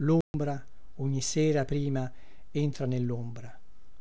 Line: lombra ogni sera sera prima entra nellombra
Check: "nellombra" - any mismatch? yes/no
no